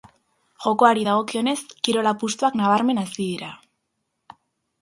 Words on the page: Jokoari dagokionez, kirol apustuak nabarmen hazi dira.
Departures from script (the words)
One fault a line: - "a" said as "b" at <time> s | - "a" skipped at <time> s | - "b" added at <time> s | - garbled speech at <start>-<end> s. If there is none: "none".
none